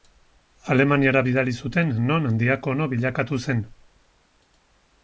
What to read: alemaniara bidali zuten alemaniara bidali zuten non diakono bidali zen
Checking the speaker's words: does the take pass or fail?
fail